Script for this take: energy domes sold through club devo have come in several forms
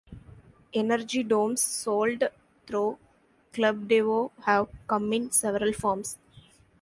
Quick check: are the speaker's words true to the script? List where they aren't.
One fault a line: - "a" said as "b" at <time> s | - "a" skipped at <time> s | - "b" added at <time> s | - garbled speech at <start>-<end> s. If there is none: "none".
none